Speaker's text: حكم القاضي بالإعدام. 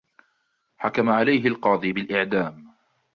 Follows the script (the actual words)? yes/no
no